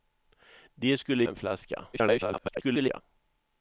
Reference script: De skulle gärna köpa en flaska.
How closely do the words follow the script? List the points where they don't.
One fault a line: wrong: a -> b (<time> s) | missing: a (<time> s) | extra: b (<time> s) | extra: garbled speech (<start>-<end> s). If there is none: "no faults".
missing: gärna köpa (1.2 s)
extra: garbled speech (1.9-3.0 s)